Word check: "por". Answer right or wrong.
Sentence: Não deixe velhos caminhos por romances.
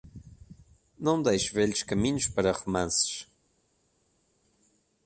wrong